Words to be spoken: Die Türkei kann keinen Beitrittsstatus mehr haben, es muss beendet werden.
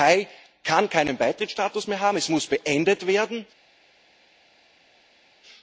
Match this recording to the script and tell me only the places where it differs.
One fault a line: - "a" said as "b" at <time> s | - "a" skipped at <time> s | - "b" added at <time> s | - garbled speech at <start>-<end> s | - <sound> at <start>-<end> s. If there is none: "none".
none